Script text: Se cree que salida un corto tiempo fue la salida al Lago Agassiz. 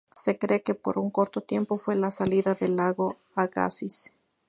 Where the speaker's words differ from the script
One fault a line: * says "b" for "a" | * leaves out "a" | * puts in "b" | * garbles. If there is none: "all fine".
* says "por" for "salida"
* says "del" for "al"